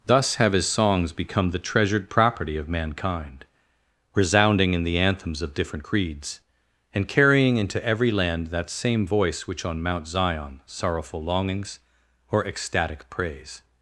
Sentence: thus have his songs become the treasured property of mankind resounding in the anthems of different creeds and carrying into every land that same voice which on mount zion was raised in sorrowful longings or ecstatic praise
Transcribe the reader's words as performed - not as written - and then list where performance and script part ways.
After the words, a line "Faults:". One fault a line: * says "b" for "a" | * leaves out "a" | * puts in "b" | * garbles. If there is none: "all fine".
thus have his songs become the treasured property of mankind resounding in the anthems of different creeds and carrying into every land that same voice which on mount zion sorrowful longings or ecstatic praise
Faults:
* leaves out "was raised in"